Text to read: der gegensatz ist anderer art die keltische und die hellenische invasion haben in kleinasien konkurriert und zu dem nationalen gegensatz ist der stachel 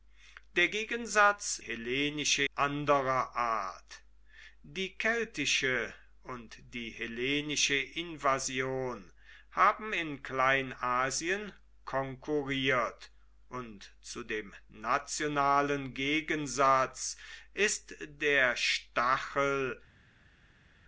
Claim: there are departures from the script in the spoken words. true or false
true